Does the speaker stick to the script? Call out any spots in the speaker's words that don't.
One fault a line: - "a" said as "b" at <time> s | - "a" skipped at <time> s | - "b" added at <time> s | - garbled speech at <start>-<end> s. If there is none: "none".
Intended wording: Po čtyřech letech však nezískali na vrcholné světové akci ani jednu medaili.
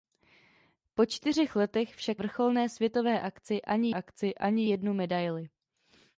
- "nezískali na vrcholné světové" said as "vrcholné světové akci ani" at 2.2 s